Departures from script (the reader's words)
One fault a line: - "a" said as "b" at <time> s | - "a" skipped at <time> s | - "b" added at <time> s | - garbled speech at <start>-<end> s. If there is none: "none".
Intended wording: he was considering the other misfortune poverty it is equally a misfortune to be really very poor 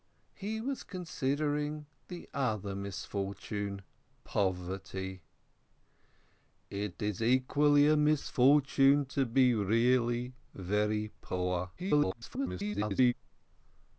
- garbled speech at 11.8-13.1 s